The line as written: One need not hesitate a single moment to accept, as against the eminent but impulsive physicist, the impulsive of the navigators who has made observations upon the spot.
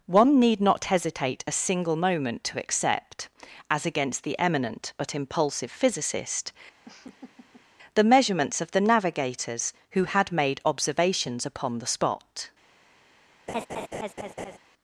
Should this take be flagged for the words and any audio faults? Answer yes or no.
yes